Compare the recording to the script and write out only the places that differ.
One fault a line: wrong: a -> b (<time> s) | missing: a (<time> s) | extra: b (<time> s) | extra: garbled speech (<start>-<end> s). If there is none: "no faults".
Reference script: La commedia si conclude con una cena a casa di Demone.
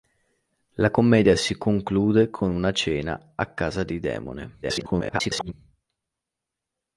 extra: garbled speech (4.6-5.5 s)